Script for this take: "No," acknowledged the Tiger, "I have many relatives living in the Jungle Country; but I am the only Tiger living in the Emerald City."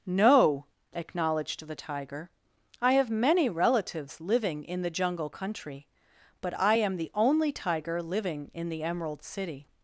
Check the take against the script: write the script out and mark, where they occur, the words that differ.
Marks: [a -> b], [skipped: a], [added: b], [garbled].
"No," acknowledged the Tiger, "I have many relatives living in the Jungle Country; but I am the only Tiger living in the Emerald City."